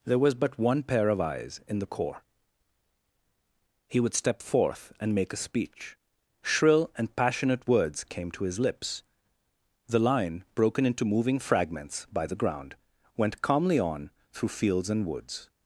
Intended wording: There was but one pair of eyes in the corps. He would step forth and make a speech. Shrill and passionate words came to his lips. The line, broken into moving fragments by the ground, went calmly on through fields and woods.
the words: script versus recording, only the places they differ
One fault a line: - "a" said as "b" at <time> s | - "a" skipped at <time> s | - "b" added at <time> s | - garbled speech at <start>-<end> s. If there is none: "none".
none